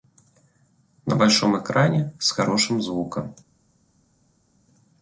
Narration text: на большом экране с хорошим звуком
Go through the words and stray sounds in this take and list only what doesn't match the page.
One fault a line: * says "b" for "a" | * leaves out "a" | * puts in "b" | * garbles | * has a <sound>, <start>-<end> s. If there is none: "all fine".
all fine